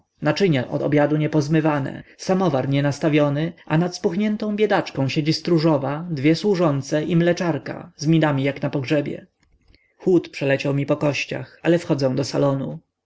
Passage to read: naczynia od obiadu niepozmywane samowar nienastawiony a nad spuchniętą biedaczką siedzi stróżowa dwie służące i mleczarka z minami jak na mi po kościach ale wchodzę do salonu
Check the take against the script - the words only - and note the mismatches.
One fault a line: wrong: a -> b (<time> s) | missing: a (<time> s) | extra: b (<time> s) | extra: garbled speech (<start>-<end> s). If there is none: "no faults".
extra: pogrzebie chłód przeleciał (8.7 s)